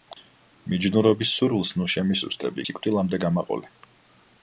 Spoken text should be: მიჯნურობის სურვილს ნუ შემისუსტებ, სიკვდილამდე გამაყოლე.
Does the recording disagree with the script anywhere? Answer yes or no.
no